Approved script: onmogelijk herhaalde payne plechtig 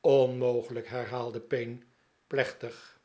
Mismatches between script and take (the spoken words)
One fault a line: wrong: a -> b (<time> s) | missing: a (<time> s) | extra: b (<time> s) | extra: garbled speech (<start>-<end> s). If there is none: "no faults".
no faults